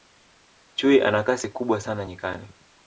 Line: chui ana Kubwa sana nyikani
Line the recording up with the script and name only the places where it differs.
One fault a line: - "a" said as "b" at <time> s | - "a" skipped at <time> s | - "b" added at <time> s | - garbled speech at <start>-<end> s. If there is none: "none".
- "Kasi" added at 1.2 s